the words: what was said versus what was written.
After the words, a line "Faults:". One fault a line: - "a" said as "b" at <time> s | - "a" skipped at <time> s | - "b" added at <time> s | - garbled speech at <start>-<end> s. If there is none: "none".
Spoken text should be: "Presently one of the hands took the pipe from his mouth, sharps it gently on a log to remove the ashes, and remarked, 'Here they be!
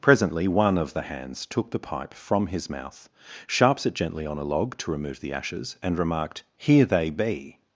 "Presently one of the hands took the pipe from his mouth, sharps it gently on a log to remove the ashes, and remarked, 'Here they be!
Faults:
none